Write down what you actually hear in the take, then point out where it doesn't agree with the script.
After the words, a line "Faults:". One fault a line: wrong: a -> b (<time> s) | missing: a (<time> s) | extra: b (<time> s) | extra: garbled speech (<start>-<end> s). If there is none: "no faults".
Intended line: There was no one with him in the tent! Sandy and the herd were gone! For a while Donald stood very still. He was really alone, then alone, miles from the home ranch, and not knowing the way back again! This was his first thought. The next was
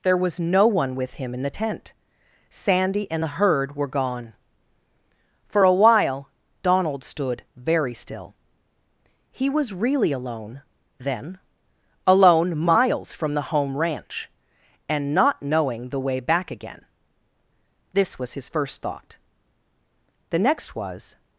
There was no one with him in the tent! Sandy and the herd were gone! For a while Donald stood very still. He was really alone, then alone, miles from the home ranch, and not knowing the way back again! This was his first thought. The next was
Faults:
no faults